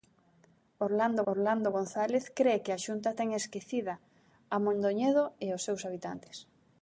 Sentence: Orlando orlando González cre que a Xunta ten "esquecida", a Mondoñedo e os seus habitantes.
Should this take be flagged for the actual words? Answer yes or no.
no